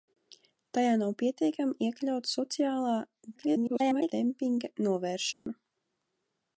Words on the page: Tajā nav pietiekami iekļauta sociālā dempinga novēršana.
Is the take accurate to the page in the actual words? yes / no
no